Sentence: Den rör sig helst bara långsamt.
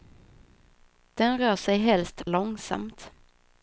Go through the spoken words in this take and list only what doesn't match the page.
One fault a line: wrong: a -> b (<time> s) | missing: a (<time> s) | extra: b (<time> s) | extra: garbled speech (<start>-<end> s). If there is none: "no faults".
missing: bara (2.3 s)